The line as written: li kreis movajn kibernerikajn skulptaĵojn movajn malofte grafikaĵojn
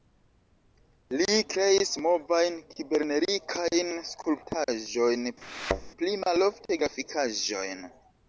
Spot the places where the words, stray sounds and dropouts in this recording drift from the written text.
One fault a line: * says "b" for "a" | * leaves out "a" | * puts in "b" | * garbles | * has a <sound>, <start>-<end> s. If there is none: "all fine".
* has a thud, 5.4-5.9 s
* says "pli" for "movajn"